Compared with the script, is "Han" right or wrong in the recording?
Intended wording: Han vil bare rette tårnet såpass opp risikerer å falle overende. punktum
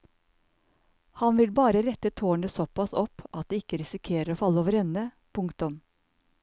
right